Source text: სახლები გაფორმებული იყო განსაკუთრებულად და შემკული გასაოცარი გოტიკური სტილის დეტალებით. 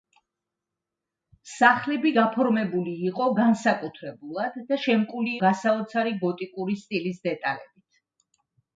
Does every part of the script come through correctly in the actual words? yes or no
yes